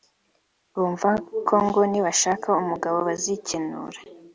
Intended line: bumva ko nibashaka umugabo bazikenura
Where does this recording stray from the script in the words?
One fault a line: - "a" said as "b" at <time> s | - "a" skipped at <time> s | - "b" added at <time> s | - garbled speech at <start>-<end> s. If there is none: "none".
- "ngo" added at 1.6 s